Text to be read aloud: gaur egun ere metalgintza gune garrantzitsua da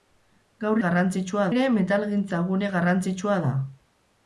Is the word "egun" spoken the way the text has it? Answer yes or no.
no